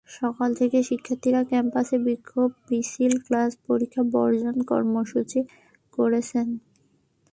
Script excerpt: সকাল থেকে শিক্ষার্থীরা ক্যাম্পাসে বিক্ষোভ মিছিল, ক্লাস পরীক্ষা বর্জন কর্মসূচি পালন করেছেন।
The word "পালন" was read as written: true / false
false